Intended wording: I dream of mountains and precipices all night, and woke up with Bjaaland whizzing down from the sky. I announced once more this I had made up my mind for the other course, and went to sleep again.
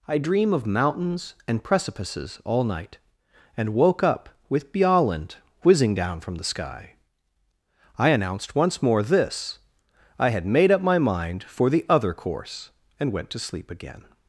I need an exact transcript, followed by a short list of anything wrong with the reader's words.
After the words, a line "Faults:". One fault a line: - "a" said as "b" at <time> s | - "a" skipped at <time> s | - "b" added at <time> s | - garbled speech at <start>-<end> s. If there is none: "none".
I dream of mountains and precipices all night, and woke up with Bjaaland whizzing down from the sky. I announced once more this I had made up my mind for the other course, and went to sleep again.
Faults:
none